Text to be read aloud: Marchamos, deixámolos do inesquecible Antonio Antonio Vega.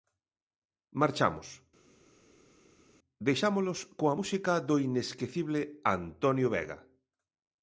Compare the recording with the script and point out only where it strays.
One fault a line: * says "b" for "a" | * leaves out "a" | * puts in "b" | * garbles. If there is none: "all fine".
* puts in "coa música"
* leaves out "Antonio"